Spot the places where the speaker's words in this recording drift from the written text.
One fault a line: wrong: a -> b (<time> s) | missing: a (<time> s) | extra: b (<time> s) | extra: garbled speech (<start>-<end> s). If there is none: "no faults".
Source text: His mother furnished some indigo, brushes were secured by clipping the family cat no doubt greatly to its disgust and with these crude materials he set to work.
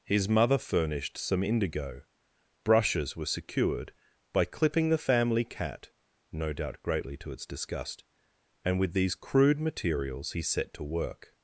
no faults